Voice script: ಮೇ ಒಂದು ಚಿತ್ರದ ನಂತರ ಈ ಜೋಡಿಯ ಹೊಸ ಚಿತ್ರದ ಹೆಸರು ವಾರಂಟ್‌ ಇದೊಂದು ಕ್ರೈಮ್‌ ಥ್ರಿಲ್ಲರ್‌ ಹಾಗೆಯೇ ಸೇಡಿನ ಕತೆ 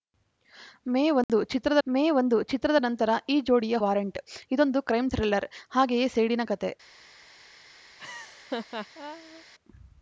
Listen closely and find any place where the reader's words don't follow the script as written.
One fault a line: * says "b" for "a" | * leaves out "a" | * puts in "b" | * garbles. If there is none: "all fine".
* puts in "ಮೇ ಒಂದು ಚಿತ್ರದ"
* leaves out "ಹೊಸ ಚಿತ್ರದ ಹೆಸರು"